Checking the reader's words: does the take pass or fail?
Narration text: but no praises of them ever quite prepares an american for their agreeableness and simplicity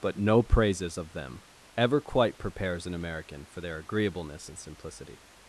pass